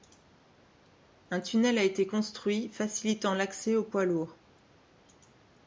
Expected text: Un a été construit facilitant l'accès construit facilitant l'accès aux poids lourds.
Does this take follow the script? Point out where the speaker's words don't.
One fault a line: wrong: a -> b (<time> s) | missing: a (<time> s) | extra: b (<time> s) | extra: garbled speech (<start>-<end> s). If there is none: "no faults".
extra: tunnel (1.4 s)
missing: construit facilitant l'accès (3.8 s)